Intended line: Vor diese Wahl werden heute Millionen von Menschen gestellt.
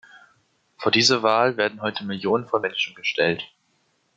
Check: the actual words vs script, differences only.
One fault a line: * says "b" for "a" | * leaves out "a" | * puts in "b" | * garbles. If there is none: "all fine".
all fine